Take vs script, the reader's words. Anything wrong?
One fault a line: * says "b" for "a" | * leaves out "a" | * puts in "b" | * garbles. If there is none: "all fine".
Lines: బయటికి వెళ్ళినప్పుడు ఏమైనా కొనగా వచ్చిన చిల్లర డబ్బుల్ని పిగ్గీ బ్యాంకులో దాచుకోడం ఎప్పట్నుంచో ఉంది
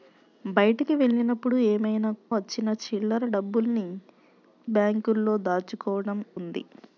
* leaves out "కొనగా"
* leaves out "పిగ్గీ"
* leaves out "ఎప్పట్నుంచో"